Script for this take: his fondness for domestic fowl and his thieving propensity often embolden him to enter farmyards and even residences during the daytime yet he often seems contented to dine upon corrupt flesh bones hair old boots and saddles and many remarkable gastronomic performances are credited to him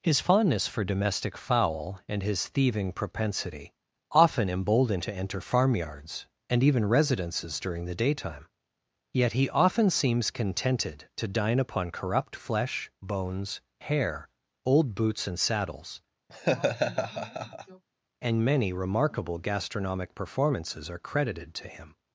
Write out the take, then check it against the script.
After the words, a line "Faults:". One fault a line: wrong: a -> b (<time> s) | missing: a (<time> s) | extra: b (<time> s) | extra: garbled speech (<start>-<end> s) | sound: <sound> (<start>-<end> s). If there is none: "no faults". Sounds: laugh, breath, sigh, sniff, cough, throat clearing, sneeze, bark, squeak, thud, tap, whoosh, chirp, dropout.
his fondness for domestic fowl and his thieving propensity often embolden to enter farmyards and even residences during the daytime yet he often seems contented to dine upon corrupt flesh bones hair old boots and saddles and many remarkable gastronomic performances are credited to him
Faults:
missing: him (5.0 s)
sound: laugh (16.3-17.8 s)